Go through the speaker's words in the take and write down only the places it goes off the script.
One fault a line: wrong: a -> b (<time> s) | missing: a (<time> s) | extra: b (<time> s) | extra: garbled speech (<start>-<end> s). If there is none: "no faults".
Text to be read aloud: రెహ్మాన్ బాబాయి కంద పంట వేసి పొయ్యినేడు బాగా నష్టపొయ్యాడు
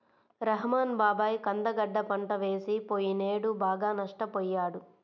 extra: గడ్డ (1.8 s)